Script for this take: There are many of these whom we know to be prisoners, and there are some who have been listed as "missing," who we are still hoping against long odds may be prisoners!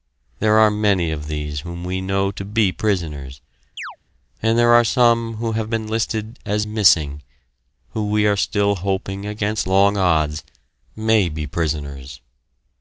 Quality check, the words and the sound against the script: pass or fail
fail